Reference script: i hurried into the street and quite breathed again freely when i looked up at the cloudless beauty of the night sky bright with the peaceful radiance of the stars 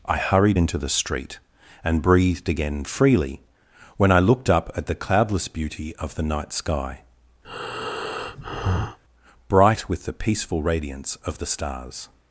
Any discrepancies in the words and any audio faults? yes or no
yes